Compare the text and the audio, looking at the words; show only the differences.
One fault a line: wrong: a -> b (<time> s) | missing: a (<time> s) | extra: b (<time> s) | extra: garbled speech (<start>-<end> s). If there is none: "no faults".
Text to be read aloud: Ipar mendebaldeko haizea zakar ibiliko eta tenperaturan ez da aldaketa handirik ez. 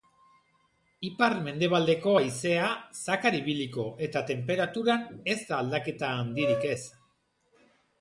no faults